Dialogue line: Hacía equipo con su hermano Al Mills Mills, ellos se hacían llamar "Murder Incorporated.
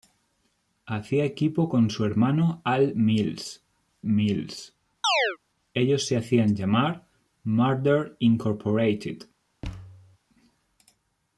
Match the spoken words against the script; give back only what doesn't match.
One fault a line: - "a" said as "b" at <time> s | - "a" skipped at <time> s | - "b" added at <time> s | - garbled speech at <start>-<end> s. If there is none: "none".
none